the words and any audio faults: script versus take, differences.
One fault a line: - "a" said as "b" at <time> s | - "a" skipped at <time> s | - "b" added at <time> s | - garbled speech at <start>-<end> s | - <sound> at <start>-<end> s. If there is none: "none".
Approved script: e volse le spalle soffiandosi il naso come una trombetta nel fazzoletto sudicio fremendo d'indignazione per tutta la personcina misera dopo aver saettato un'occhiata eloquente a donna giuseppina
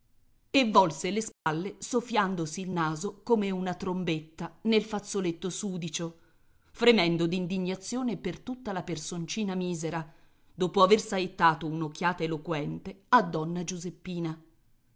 - dropout at 1.3-1.5 s